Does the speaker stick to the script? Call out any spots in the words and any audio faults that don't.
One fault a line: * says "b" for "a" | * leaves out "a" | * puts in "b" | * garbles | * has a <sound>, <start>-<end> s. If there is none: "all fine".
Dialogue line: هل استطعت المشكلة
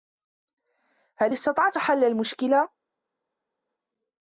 * puts in "حل"